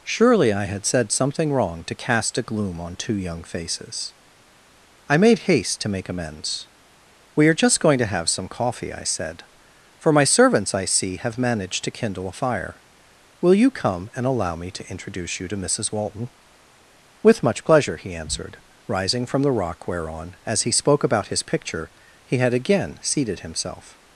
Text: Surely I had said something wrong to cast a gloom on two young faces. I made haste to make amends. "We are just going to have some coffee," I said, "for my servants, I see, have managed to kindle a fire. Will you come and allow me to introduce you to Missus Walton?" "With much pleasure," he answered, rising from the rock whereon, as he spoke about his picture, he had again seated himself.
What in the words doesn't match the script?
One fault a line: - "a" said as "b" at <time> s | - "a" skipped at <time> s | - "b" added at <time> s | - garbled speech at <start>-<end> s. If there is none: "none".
none